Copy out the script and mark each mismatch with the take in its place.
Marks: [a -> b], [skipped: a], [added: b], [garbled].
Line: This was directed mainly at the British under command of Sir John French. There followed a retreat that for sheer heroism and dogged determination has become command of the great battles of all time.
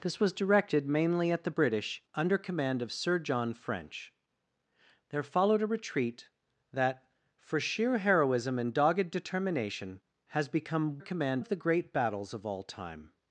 This was directed mainly at the British under command of Sir John French. There followed a retreat that for sheer heroism and dogged determination has become command of the great battles of all time.